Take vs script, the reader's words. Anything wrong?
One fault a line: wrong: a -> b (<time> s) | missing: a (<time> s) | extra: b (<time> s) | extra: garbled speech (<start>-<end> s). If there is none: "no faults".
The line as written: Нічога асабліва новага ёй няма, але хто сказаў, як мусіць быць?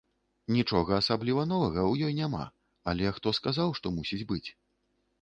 extra: ў (1.9 s)
wrong: як -> што (3.8 s)